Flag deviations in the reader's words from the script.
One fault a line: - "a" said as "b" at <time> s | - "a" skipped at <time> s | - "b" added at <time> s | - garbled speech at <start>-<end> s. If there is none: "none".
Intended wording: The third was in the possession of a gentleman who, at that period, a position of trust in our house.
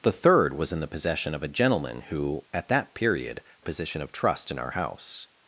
none